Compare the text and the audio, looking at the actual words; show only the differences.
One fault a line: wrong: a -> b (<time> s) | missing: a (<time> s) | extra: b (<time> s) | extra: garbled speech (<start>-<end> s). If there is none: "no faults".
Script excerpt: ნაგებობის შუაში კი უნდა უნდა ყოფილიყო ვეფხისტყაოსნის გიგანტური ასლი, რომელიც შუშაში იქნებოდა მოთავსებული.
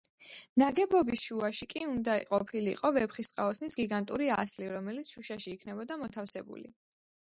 missing: უნდა (2.1 s)